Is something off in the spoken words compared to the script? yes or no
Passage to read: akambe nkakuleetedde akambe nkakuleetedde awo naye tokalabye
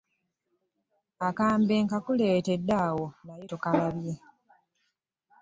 yes